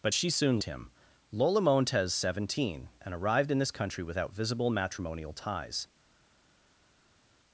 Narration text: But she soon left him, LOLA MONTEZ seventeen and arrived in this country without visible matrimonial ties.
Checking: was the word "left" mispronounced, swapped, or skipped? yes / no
yes